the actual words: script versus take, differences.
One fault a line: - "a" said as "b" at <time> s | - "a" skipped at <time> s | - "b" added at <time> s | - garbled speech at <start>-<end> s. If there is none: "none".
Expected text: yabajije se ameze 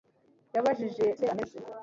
none